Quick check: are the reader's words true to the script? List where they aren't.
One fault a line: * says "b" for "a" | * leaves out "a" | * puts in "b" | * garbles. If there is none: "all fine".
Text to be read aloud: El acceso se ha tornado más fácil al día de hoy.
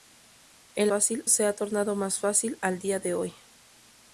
* says "fácil" for "acceso"